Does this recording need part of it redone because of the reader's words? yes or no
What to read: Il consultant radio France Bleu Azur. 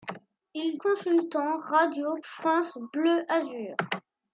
no